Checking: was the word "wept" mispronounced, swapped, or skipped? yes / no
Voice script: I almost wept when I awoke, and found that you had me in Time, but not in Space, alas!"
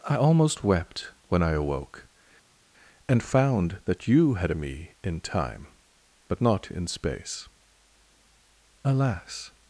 no